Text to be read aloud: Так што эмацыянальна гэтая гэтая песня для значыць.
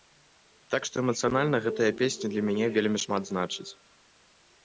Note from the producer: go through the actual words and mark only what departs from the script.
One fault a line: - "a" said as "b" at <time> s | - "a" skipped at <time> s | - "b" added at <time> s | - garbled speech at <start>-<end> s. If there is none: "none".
- "гэтая" skipped at 1.9 s
- "мяне вельмі шмат" added at 2.5 s